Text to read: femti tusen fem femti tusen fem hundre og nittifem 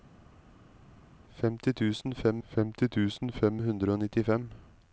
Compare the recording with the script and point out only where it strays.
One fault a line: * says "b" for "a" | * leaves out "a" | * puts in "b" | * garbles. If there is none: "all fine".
all fine